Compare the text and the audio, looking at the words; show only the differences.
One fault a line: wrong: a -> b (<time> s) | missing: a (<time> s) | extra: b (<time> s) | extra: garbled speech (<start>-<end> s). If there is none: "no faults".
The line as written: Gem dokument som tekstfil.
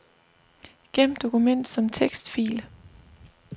no faults